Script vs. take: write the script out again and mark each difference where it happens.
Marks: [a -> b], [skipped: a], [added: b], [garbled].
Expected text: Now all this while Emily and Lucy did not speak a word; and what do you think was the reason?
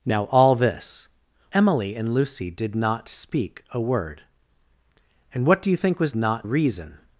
Now all this [skipped: while] Emily and Lucy did not speak a word; and what do you think was [the -> not] reason?